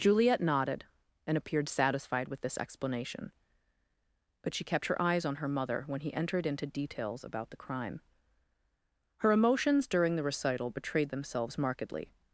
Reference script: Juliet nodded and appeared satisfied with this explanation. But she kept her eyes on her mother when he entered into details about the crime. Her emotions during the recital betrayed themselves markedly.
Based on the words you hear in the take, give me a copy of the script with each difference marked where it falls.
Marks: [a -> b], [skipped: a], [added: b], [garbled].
Juliet nodded and appeared satisfied with this explanation. But she kept her eyes on her mother when he entered into details about the crime. Her emotions during the recital betrayed themselves markedly.